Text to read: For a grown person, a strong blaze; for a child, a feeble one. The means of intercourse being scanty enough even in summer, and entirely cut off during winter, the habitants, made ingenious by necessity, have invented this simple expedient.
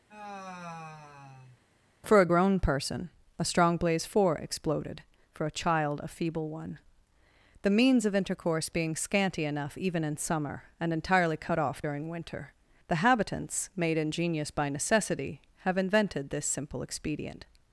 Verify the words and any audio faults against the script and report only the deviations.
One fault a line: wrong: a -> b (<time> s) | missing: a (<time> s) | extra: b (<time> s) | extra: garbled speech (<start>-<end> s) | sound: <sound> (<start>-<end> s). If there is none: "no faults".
sound: sigh (0.1-1.6 s)
extra: four exploded (4.1 s)